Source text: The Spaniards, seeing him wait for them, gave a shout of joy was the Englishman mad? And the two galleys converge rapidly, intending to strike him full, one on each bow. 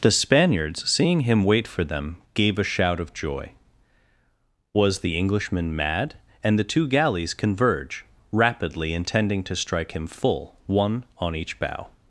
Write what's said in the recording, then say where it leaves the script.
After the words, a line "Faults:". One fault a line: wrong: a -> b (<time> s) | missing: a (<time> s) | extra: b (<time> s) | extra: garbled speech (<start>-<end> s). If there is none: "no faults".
The Spaniards, seeing him wait for them, gave a shout of joy was the Englishman mad? And the two galleys converge rapidly, intending to strike him full, one on each bow.
Faults:
no faults